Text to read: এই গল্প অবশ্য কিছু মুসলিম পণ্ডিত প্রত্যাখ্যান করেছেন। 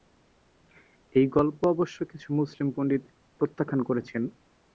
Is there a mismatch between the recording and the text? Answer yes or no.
no